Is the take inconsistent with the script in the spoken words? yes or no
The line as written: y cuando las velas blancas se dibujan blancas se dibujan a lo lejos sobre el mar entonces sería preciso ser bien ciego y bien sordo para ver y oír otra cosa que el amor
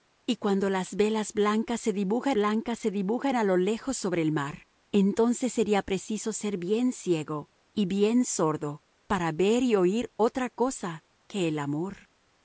no